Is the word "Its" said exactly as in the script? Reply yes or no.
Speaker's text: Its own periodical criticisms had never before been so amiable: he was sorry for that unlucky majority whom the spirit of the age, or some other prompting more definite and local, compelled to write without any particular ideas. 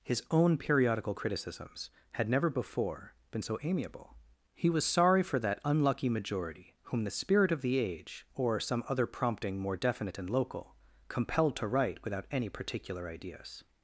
no